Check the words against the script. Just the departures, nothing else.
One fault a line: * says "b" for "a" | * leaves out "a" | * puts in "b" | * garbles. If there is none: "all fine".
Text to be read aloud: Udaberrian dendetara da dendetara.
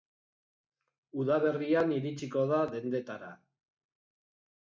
* says "iritsiko" for "dendetara"